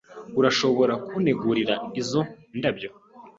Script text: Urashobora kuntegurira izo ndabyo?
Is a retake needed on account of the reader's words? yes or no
no